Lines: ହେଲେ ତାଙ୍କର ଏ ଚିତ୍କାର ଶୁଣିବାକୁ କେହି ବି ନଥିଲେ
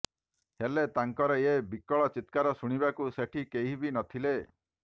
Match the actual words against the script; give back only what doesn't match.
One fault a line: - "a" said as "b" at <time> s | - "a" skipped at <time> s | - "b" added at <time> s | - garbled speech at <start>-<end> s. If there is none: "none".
- "ବିକଳ" added at 1.7 s
- "ସେଠି" added at 3.2 s